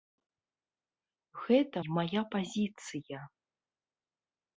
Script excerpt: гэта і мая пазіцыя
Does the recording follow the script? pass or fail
pass